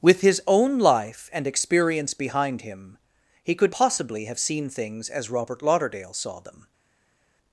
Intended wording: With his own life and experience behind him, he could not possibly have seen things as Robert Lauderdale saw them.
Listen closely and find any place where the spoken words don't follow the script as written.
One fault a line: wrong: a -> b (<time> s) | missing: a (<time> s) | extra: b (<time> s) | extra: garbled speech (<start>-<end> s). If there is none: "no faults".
missing: not (3.8 s)